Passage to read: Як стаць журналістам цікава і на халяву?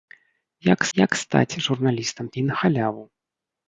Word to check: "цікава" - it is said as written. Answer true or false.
false